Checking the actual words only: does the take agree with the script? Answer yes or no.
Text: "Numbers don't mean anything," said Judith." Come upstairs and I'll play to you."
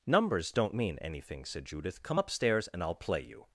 no